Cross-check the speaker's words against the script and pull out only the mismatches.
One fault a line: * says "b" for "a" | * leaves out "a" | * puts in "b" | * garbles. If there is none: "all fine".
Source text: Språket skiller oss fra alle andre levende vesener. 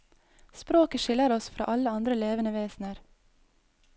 all fine